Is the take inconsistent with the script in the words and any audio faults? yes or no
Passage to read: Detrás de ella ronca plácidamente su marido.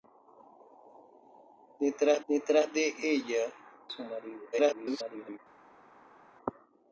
yes